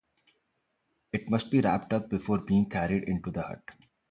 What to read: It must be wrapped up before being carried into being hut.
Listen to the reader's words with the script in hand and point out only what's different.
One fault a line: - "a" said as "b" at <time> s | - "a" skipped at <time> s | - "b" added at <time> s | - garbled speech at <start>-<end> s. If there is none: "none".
- "being" said as "the" at 3.3 s